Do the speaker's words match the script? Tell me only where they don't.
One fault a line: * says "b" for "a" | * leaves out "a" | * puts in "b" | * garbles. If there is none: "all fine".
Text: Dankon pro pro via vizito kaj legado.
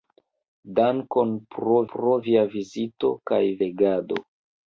all fine